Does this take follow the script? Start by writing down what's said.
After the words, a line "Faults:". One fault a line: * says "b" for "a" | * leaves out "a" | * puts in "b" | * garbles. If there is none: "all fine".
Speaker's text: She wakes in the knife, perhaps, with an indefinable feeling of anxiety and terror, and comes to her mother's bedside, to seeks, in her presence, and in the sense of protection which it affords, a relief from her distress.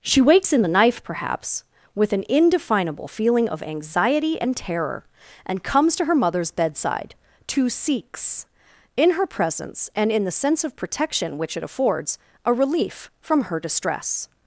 She wakes in the knife, perhaps, with an indefinable feeling of anxiety and terror, and comes to her mother's bedside, to seeks, in her presence, and in the sense of protection which it affords, a relief from her distress.
Faults:
all fine